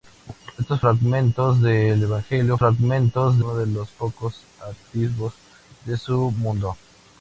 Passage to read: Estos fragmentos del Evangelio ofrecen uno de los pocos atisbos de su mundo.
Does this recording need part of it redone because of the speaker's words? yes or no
yes